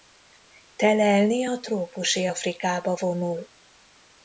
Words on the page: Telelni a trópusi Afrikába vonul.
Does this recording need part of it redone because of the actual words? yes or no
no